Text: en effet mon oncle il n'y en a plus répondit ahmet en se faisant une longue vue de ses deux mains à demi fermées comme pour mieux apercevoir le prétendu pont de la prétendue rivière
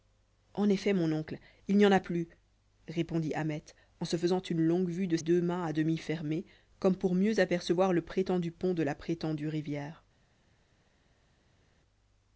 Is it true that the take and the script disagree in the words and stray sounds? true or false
true